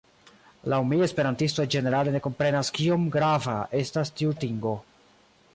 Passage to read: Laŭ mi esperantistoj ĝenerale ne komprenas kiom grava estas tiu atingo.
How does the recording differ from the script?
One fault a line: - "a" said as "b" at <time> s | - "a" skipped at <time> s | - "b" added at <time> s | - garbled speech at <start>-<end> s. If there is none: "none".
none